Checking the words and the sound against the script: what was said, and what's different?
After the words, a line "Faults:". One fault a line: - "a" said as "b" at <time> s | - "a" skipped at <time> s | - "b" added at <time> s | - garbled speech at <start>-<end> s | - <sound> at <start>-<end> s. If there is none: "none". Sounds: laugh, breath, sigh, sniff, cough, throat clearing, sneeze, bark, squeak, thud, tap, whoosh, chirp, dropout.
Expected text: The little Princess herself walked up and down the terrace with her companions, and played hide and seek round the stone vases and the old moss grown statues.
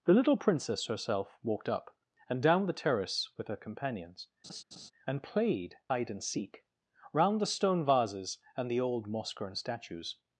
The little Princess herself walked up and down the terrace with her companions, and played hide and seek round the stone vases and the old moss grown statues.
Faults:
- laugh at 4.4-4.9 s